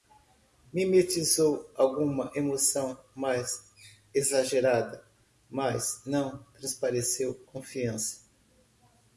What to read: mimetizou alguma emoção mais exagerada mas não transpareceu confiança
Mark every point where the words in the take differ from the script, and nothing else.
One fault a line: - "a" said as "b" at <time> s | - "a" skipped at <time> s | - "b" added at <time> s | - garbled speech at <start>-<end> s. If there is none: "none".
none